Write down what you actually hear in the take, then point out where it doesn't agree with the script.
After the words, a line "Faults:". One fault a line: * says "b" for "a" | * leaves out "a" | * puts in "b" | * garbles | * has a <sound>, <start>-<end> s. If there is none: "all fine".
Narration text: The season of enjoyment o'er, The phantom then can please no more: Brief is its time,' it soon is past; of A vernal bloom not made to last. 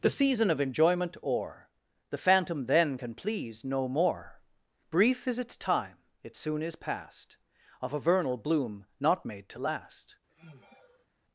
The season of enjoyment o'er, The phantom then can please no more: Brief is its time,' it soon is past; of A vernal bloom not made to last.
Faults:
* has a sigh, 10.3-11.1 s